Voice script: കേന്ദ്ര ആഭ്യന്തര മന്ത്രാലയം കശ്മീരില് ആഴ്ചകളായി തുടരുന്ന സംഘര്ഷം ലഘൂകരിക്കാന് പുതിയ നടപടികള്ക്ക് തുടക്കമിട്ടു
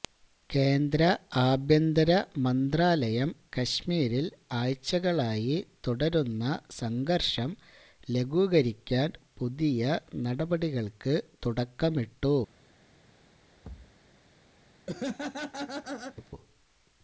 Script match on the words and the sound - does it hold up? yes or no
no